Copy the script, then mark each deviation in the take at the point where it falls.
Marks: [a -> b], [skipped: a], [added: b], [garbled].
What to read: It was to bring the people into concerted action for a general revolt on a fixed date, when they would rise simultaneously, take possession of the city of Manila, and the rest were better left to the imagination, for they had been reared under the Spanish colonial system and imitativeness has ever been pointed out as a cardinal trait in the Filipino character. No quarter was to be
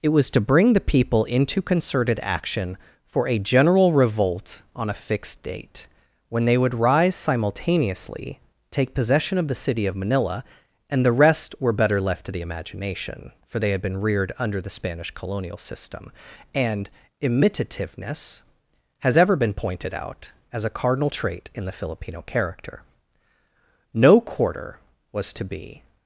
It was to bring the people into concerted action for a general revolt on a fixed date, when they would rise simultaneously, take possession of the city of Manila, and the rest were better left to the imagination, for they had been reared under the Spanish colonial system and imitativeness has ever been pointed out as a cardinal trait in the Filipino character. No quarter was to be